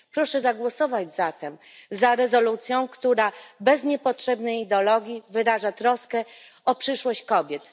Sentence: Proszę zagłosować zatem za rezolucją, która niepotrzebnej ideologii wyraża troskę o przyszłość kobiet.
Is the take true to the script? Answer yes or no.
no